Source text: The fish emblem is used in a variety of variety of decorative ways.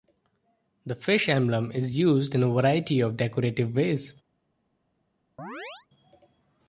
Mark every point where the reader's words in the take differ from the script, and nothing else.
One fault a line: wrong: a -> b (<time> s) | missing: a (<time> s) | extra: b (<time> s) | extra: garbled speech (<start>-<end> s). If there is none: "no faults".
missing: variety of (3.2 s)